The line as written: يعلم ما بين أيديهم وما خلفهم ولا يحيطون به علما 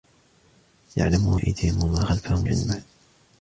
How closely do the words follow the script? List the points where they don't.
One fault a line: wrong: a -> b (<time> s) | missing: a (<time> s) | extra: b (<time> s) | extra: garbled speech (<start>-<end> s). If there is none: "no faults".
missing: ما بين (1.4 s)
missing: ولا يحيطون به (2.5 s)